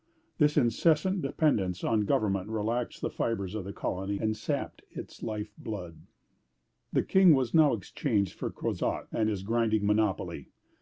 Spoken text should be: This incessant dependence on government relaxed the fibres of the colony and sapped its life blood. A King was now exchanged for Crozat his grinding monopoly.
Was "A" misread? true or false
true